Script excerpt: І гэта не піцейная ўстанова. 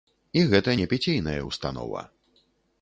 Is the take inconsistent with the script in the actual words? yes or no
no